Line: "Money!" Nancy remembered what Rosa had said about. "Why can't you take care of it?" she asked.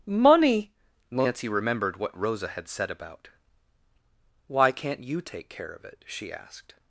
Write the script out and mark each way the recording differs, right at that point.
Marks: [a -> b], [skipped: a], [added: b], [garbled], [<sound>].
"Money!" Nancy remembered what Rosa had said about. "Why can't you take care of it?" she asked.